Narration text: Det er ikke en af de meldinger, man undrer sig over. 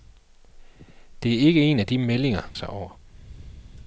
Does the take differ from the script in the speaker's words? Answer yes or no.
yes